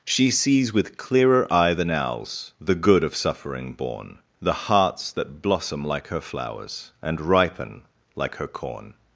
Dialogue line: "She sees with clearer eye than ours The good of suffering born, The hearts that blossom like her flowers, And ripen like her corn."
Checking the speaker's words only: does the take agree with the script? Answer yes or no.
no